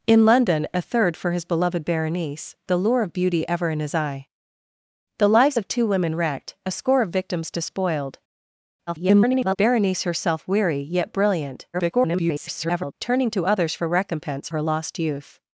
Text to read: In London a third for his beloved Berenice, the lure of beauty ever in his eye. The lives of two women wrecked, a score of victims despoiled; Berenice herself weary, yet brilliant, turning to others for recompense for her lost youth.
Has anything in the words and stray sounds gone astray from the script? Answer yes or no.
yes